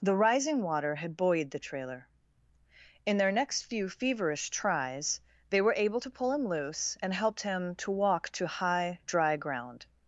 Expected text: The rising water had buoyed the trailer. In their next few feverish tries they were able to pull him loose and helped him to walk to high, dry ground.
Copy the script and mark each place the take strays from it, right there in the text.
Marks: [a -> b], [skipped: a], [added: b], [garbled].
The rising water had buoyed the trailer. In their next few feverish tries they were able to pull him loose and helped him to walk to high, dry ground.